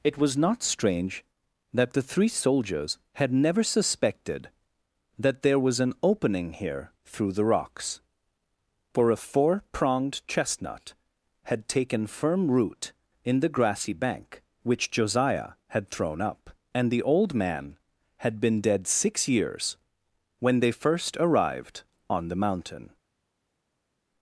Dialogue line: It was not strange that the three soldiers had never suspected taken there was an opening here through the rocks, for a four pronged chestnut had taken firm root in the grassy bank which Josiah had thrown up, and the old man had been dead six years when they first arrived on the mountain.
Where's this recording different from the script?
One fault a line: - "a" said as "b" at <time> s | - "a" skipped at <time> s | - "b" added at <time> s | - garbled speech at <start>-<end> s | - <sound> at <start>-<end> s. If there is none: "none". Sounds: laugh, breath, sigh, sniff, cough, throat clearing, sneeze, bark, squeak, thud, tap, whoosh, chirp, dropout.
- "taken" said as "that" at 5.2 s